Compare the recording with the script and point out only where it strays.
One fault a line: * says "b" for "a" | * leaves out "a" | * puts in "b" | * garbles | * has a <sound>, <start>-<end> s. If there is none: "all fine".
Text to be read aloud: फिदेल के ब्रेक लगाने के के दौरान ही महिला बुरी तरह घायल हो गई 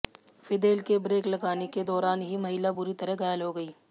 * leaves out "के"